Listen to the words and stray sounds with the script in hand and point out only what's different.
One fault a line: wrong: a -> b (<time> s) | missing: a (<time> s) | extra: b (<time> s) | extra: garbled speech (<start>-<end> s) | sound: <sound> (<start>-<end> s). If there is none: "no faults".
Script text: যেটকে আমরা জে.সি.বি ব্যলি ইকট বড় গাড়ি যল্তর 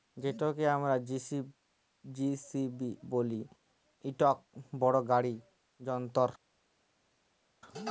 no faults